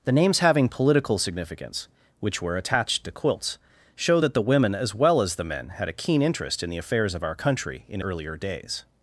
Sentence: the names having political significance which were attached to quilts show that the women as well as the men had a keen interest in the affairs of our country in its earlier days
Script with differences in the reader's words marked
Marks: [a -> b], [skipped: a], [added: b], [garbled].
the names having political significance which were attached to quilts show that the women as well as the men had a keen interest in the affairs of our country in [skipped: its] earlier days